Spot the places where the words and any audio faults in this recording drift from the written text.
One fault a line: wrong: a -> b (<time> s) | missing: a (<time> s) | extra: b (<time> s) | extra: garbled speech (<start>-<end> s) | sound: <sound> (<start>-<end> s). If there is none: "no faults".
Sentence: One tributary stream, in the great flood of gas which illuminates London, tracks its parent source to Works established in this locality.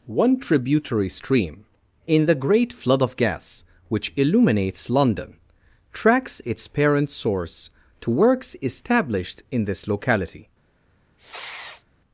sound: sniff (11.2-11.8 s)